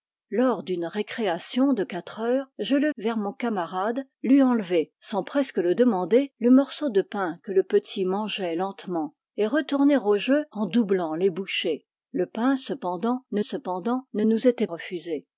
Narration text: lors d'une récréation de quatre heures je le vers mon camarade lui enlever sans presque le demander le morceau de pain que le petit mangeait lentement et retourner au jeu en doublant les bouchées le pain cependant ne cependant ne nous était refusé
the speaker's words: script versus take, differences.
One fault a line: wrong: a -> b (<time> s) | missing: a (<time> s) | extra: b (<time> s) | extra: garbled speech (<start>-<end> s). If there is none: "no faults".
no faults